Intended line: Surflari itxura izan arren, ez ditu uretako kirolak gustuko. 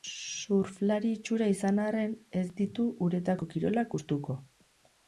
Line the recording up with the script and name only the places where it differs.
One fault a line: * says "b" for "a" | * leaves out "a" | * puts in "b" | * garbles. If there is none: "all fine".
all fine